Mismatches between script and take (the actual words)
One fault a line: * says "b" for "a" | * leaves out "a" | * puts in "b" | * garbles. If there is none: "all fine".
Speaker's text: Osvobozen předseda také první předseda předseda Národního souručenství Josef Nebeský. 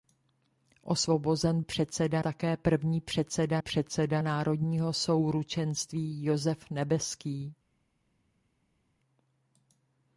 all fine